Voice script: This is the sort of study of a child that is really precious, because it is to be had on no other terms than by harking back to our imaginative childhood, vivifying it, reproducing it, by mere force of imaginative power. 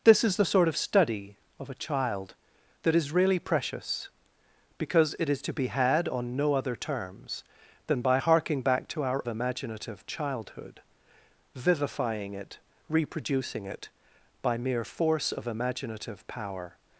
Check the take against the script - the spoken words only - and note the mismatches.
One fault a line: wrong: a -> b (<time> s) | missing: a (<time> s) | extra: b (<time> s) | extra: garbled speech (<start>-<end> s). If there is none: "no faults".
no faults